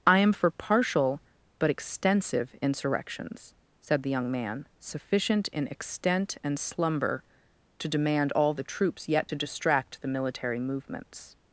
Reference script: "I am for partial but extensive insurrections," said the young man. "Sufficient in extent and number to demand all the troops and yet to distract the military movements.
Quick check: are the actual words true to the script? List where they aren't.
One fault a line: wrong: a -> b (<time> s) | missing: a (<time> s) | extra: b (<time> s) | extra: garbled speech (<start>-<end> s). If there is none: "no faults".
wrong: number -> slumber (6.6 s)
missing: and (9.1 s)